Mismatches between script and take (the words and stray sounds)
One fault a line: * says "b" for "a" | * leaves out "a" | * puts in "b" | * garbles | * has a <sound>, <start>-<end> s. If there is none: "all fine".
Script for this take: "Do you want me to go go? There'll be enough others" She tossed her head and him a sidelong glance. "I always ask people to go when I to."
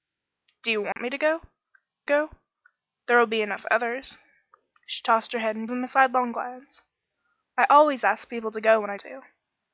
* has a dropout, 0.9-1.0 s